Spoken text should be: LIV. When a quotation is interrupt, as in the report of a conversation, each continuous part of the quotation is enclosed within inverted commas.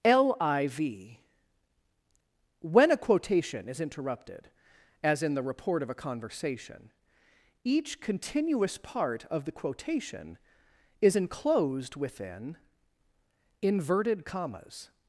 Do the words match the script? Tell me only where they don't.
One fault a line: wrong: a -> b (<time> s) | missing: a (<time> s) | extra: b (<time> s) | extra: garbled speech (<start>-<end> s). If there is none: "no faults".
wrong: interrupt -> interrupted (3.8 s)